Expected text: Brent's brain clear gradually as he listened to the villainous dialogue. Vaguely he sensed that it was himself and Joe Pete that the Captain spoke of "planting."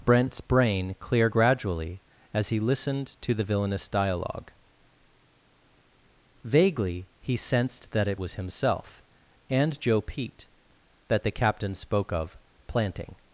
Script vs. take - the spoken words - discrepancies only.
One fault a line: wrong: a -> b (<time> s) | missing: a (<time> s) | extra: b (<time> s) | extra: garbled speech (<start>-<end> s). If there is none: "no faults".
no faults